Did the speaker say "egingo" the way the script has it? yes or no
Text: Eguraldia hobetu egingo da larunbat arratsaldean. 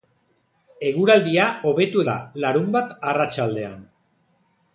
no